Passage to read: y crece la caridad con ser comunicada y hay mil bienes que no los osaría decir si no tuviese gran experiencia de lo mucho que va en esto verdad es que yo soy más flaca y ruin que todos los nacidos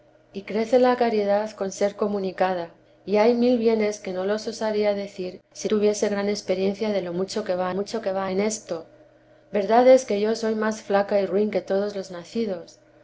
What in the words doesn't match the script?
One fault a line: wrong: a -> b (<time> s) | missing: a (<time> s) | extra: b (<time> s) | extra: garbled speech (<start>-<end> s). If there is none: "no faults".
missing: no (5.7 s)
extra: mucho que va (7.7 s)